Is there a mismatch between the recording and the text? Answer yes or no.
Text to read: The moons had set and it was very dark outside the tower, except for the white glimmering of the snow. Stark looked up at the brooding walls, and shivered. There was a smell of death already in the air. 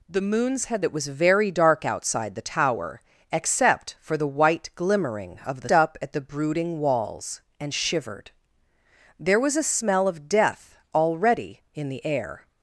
yes